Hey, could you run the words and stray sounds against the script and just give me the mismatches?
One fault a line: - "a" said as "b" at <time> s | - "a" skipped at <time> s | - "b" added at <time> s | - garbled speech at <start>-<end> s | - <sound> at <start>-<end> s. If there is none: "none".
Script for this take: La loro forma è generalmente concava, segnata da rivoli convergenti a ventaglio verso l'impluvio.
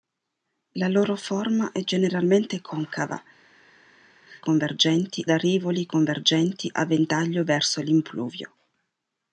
- "segnata" said as "convergenti" at 4.4 s